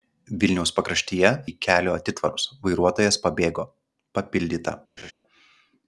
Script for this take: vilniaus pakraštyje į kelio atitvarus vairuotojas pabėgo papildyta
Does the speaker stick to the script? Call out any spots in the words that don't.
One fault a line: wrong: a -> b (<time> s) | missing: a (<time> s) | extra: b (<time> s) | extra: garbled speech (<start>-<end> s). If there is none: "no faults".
no faults